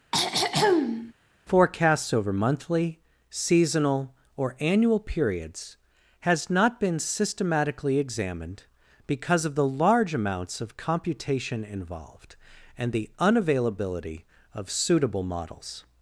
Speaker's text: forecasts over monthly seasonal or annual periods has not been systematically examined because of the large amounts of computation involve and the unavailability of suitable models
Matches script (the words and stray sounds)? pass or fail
fail